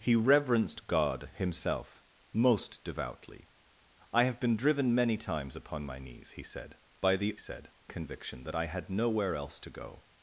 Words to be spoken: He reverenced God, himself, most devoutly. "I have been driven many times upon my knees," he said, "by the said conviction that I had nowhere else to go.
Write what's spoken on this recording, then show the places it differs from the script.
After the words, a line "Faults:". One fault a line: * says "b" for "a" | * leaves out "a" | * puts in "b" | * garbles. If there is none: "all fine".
He reverenced God, himself, most devoutly. "I have been driven many times upon my knees," he said, "by the said conviction that I had nowhere else to go.
Faults:
all fine